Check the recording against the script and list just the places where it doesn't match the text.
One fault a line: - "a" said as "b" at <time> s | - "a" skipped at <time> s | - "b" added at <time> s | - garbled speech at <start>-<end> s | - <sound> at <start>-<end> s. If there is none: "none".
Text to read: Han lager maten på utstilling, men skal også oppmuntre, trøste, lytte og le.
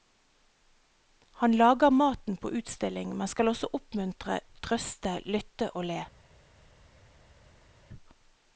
none